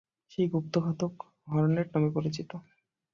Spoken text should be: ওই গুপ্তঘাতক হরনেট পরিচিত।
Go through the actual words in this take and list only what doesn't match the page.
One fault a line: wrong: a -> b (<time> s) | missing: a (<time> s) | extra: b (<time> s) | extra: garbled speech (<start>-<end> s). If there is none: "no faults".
wrong: ওই -> সেই (0.3 s)
extra: নামে (1.9 s)